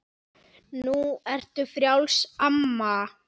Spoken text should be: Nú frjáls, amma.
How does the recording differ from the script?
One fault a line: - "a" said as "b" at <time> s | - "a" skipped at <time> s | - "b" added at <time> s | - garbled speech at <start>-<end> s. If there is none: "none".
- "ertu" added at 1.3 s